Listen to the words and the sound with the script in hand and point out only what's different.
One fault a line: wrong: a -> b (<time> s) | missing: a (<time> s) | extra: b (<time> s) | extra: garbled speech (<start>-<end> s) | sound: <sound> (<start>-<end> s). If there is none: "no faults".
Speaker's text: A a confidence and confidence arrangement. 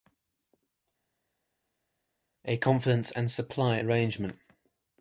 missing: a (2.6 s)
wrong: confidence -> supply (3.3 s)